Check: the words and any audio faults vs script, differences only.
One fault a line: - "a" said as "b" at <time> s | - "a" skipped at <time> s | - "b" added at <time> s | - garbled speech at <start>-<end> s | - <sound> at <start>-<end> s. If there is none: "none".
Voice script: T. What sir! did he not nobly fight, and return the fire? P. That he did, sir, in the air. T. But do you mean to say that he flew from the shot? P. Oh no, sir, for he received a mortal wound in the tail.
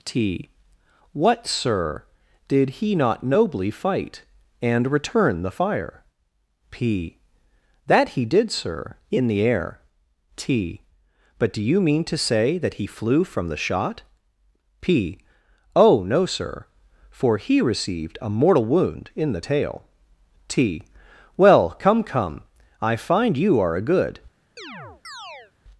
- "T Well come come I find you are a good" added at 20.5 s
- chirp at 24.6-25.5 s